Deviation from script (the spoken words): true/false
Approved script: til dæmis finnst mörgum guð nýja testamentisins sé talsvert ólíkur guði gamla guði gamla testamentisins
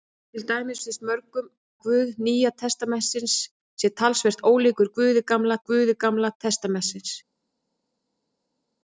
false